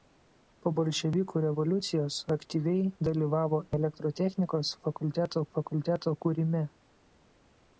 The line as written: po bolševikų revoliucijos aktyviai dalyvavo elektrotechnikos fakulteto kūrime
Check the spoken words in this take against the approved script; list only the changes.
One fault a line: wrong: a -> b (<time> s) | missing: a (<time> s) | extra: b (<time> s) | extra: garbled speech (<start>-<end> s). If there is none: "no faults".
extra: fakulteto (5.6 s)